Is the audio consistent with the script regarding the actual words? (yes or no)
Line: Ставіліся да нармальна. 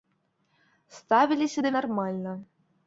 yes